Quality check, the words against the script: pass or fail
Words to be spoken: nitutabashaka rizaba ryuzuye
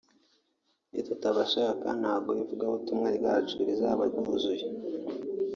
fail